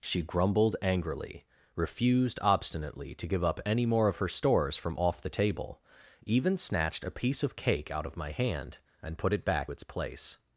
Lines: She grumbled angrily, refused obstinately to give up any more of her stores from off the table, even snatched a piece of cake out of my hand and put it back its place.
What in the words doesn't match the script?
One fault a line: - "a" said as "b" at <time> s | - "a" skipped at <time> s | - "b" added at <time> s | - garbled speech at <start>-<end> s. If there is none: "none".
none